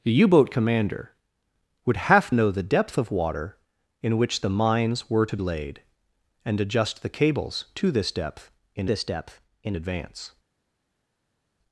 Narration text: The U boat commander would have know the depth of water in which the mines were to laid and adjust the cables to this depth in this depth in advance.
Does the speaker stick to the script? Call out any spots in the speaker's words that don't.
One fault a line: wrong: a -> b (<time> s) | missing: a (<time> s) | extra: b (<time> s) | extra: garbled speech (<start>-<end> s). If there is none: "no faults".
no faults